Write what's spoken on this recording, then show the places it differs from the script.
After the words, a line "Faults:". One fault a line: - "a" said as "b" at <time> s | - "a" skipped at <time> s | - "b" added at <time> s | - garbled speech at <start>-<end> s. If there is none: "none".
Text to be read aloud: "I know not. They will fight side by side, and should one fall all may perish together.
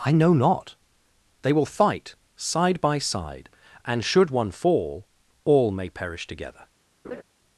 "I know not. They will fight side by side, and should one fall all may perish together.
Faults:
none